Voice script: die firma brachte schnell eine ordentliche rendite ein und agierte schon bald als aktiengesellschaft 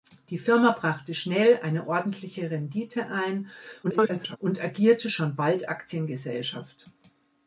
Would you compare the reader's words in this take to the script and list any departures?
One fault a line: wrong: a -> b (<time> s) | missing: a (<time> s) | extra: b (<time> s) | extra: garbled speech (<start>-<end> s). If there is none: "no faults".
extra: garbled speech (3.8-4.4 s)
missing: als (5.7 s)